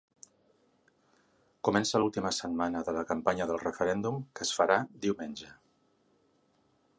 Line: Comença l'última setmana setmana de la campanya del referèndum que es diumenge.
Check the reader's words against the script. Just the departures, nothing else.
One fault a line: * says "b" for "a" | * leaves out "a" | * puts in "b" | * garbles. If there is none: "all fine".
* leaves out "setmana"
* puts in "farà"